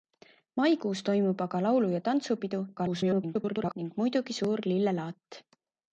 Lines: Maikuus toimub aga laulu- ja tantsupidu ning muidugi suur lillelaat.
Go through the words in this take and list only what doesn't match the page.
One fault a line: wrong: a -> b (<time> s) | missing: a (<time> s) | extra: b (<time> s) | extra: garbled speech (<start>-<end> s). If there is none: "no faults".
extra: garbled speech (2.8-3.7 s)